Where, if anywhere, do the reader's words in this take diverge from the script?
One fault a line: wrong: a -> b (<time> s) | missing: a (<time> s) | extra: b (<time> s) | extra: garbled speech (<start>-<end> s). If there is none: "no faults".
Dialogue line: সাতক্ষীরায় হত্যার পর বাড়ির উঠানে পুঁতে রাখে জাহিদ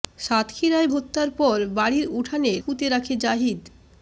no faults